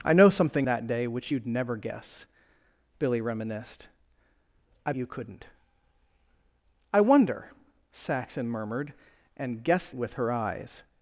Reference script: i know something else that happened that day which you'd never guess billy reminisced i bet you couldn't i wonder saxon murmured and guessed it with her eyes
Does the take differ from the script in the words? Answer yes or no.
yes